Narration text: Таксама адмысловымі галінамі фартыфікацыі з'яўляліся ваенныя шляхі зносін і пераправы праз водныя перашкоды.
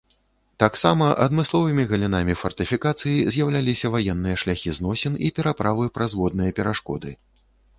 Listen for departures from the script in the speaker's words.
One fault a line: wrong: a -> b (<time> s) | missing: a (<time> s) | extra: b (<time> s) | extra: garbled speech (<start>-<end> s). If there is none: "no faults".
no faults